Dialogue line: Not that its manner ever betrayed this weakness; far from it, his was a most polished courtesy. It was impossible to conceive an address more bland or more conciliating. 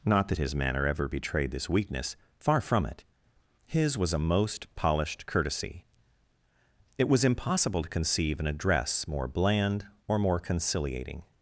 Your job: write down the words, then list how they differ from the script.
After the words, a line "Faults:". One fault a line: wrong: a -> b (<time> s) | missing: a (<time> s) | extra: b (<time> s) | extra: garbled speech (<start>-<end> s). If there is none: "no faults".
Not that his manner ever betrayed this weakness; far from it, his was a most polished courtesy. It was impossible to conceive an address more bland or more conciliating.
Faults:
wrong: its -> his (0.4 s)